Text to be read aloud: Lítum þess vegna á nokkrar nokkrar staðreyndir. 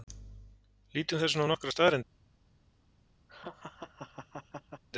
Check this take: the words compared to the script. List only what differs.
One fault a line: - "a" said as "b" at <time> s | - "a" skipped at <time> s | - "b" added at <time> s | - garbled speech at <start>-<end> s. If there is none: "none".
- "nokkrar" skipped at 1.8 s